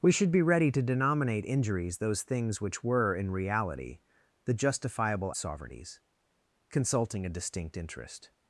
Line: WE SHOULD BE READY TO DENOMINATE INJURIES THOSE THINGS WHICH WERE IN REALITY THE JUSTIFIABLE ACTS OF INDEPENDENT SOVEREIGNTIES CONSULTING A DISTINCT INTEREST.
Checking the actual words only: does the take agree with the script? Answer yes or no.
no